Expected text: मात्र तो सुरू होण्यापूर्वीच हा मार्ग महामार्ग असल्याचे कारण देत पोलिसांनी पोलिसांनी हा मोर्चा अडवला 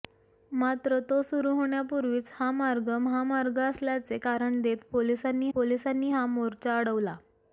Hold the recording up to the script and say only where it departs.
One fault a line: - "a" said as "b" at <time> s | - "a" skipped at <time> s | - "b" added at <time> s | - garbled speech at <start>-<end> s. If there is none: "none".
none